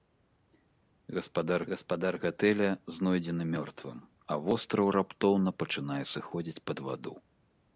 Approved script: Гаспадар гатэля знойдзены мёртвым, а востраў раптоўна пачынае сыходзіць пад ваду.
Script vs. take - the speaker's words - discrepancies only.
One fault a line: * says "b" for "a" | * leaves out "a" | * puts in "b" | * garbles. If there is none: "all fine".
* puts in "гаспадар"